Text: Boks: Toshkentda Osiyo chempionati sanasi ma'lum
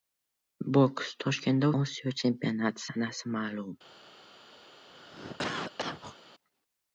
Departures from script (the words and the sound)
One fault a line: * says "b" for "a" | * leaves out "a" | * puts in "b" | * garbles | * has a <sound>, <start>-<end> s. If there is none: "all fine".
* has a cough, 4.9-6.2 s